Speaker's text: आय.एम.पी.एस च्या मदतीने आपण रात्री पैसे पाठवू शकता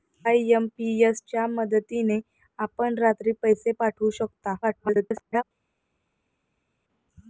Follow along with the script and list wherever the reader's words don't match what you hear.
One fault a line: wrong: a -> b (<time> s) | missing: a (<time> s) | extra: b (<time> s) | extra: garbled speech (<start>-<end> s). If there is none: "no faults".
extra: garbled speech (4.6-5.4 s)